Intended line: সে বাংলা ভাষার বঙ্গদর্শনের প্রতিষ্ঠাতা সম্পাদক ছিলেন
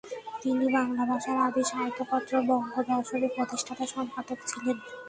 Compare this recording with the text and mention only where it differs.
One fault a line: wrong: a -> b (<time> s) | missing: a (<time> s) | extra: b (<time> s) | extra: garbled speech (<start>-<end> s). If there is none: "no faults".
wrong: সে -> তিনি (0.4 s)
extra: আদি সাহিত্যপত্র (1.5 s)